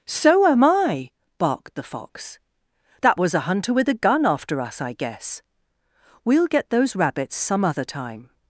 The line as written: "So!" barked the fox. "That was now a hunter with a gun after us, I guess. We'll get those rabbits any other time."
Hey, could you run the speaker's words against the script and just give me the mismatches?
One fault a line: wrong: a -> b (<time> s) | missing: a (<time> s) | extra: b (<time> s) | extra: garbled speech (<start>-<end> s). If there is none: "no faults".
extra: am I (0.5 s)
missing: now (3.3 s)
wrong: any -> some (7.4 s)